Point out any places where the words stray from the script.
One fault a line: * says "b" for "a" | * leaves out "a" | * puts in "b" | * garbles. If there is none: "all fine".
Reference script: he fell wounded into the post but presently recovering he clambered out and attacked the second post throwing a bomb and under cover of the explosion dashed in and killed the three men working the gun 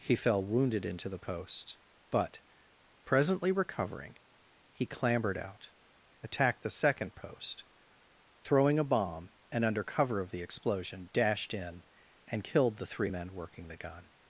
* leaves out "and"